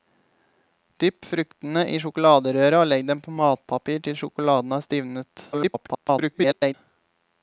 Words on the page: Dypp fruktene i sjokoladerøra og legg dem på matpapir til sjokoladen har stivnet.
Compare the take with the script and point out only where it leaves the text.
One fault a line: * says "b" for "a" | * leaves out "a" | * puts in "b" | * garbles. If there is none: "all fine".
* garbles